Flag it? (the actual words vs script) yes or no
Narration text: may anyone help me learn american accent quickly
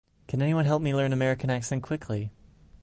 yes